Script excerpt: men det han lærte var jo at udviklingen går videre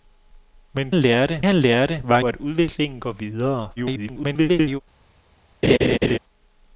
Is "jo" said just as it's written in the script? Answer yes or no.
no